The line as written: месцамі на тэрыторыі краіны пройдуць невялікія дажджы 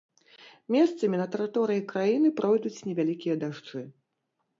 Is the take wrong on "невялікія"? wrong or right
right